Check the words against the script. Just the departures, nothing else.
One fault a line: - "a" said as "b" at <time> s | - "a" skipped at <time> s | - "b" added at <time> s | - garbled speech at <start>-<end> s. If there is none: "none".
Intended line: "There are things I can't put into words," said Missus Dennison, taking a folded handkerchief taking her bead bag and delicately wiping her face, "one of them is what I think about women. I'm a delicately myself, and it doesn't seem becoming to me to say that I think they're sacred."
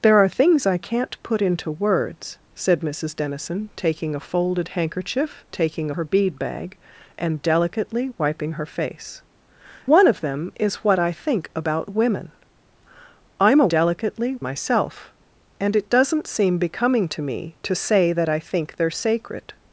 none